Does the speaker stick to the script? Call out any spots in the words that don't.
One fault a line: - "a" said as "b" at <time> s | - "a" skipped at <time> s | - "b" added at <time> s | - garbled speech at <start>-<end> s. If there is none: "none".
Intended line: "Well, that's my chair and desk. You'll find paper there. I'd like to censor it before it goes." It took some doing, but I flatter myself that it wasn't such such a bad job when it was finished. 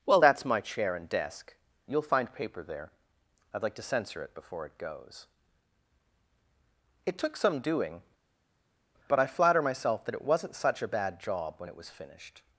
- "such" skipped at 10.8 s